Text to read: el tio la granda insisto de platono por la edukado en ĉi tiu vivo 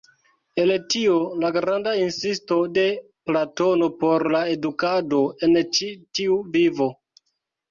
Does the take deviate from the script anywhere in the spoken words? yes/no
no